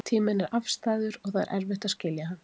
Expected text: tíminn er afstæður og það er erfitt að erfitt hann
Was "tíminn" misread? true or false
false